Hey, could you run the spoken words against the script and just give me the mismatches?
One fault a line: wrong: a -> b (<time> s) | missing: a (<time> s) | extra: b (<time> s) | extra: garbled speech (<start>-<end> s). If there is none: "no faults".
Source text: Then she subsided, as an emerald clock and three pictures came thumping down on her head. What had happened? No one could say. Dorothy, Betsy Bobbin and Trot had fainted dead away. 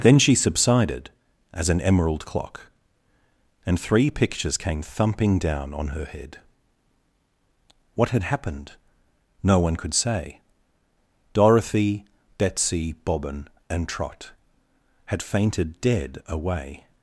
no faults